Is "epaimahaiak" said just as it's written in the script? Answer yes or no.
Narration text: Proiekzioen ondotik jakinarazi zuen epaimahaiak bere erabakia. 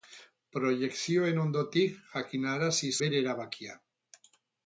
no